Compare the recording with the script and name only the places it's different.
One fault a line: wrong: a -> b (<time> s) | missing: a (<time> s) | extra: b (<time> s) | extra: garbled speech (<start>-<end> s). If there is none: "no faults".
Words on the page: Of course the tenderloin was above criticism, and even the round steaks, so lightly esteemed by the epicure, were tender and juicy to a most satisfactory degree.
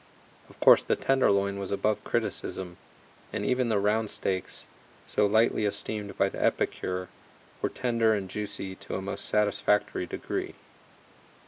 no faults